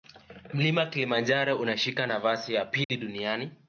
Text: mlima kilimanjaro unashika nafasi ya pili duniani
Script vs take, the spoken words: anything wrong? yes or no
no